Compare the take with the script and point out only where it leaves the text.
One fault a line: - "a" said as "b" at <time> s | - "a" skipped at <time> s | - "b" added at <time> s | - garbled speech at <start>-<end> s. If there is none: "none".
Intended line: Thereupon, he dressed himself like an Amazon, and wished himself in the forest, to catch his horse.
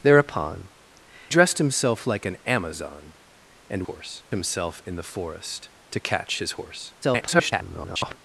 - "he" skipped at 0.7 s
- "wished" said as "horse" at 3.8 s
- garbled speech at 7.0-8.2 s